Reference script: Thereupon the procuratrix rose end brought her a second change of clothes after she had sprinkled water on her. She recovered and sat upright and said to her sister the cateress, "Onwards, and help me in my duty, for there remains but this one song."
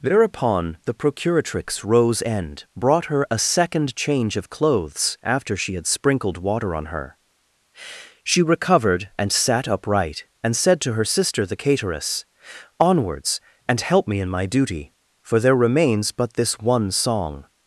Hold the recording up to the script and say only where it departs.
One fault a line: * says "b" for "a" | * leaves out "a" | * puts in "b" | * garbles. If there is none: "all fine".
all fine